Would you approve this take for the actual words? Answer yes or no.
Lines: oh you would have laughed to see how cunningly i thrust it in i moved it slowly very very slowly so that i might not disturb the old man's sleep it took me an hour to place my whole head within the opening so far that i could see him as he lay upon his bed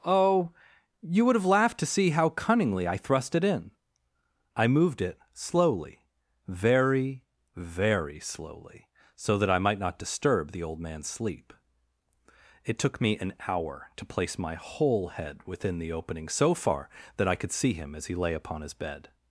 yes